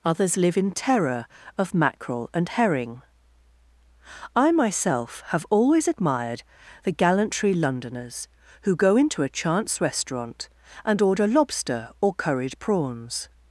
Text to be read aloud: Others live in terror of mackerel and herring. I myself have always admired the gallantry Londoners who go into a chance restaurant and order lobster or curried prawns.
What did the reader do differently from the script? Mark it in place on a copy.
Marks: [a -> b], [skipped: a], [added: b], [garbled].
Others live in terror of mackerel and herring. I myself have always admired the gallantry Londoners who go into a chance restaurant and order lobster or curried prawns.